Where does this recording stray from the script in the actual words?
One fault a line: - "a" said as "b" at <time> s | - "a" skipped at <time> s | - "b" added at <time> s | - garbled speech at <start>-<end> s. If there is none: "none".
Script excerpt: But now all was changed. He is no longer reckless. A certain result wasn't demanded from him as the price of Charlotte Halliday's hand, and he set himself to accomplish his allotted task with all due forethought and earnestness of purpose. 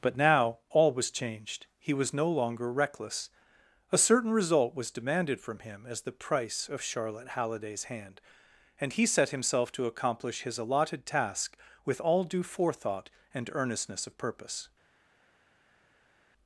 - "is" said as "was" at 1.9 s
- "wasn't" said as "was" at 4.8 s